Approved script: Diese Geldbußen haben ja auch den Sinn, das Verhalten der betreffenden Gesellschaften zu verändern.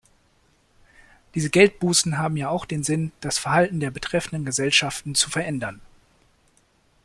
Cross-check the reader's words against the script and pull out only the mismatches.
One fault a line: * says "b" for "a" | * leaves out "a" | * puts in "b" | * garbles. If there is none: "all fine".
all fine